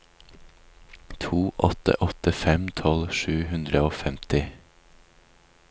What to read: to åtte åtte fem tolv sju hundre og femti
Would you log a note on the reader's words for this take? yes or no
no